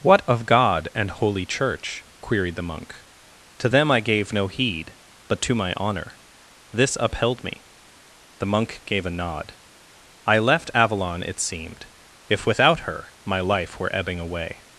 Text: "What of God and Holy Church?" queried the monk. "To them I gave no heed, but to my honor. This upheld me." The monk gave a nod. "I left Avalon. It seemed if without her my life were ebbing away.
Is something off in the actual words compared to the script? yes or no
no